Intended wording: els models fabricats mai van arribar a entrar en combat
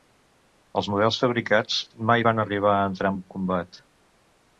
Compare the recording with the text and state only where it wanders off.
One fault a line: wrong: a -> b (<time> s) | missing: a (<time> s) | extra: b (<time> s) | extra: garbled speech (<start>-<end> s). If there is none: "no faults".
no faults